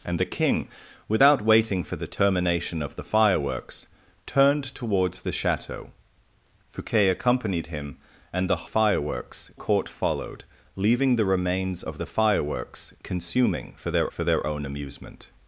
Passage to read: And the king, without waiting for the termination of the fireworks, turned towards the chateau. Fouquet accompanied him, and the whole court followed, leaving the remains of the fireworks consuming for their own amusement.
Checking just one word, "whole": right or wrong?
wrong